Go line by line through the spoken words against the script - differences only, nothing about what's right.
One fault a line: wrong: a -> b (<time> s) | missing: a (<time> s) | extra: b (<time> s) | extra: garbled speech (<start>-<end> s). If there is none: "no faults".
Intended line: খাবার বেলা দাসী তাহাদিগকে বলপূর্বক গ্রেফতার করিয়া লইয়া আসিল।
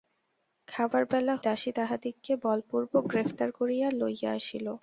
no faults